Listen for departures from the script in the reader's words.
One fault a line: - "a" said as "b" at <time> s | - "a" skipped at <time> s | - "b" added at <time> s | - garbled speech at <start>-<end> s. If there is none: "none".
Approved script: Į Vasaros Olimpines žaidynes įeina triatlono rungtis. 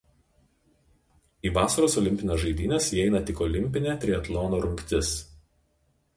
- "tik Olimpinė" added at 3.3 s